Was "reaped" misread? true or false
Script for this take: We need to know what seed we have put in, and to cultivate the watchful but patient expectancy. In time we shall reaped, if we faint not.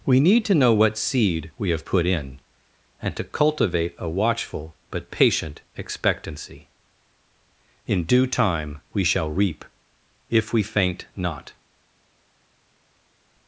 true